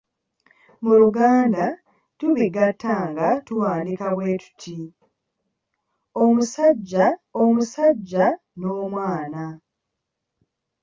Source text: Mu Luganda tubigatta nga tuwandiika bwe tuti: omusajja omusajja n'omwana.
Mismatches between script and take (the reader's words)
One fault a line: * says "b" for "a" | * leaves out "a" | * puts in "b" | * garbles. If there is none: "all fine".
all fine